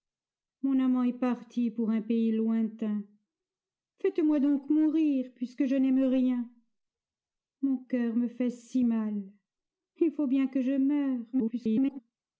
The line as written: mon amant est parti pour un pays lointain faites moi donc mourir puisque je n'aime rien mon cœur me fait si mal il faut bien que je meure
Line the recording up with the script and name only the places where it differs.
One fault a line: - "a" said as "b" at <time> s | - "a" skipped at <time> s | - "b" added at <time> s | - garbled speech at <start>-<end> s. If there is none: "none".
- garbled speech at 11.3-12.0 s